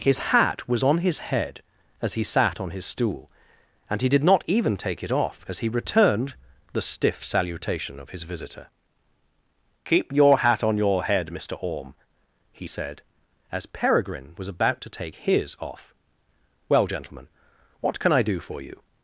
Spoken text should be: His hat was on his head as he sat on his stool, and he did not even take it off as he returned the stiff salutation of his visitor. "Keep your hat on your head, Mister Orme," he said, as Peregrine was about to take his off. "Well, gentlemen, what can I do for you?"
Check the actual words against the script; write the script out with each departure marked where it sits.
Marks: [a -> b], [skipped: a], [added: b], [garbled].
His hat was on his head as he sat on his stool, and he did not even take it off as he returned the stiff salutation of his visitor. "Keep your hat on your head, Mister Orme," he said, as Peregrine was about to take his off. "Well, gentlemen, what can I do for you?"